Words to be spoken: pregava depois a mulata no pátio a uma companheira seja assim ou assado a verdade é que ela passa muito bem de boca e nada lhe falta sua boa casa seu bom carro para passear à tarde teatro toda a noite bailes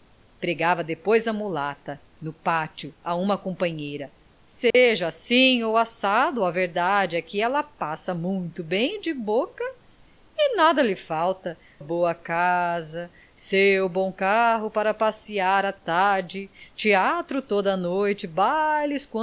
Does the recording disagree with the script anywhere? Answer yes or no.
yes